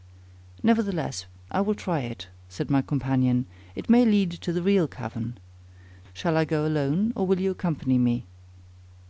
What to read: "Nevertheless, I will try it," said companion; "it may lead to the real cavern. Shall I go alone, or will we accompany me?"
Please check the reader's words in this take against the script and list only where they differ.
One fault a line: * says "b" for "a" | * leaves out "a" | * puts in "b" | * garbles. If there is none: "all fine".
* puts in "my"
* says "you" for "we"